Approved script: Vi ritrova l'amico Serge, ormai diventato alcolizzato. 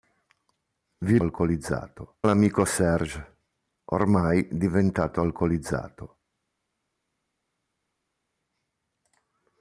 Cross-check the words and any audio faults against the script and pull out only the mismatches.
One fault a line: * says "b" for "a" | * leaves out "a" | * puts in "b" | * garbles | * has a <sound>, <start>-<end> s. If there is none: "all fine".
* says "alcolizzato" for "ritrova"